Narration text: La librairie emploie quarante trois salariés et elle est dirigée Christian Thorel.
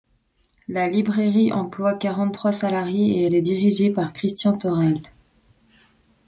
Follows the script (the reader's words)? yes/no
no